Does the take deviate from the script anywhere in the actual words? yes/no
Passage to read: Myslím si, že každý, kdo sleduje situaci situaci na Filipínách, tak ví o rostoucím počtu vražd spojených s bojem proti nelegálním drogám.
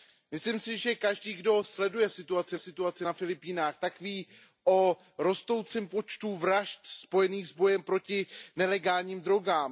no